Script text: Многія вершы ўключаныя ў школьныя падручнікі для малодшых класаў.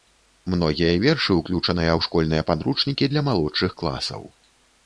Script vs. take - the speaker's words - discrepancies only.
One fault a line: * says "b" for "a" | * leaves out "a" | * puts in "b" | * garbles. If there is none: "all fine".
all fine